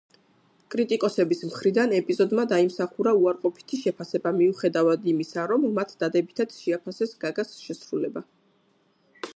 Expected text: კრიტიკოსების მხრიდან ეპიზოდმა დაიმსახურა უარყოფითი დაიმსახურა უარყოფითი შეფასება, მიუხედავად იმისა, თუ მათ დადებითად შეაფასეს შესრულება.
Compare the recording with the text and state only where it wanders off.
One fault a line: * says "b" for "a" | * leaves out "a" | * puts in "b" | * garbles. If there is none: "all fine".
* leaves out "დაიმსახურა უარყოფითი"
* says "რომ" for "თუ"
* puts in "გაგას"